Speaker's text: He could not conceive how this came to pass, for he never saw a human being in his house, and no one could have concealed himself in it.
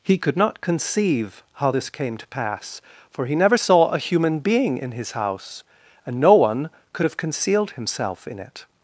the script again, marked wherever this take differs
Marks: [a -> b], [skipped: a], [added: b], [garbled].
He could not conceive how this came to pass, for he never saw a human being in his house, and no one could have concealed himself in it.